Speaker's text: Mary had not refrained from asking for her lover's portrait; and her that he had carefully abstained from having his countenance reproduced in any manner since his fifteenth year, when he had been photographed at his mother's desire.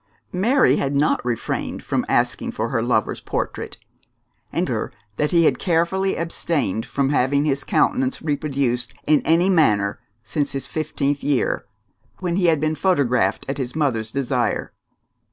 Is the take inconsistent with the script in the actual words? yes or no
no